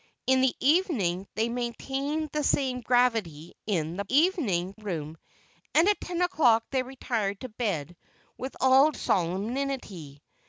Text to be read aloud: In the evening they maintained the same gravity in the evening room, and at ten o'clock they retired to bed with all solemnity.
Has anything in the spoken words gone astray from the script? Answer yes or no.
no